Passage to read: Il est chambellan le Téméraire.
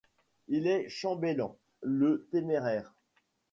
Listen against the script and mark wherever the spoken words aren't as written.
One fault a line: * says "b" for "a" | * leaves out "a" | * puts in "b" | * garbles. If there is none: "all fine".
all fine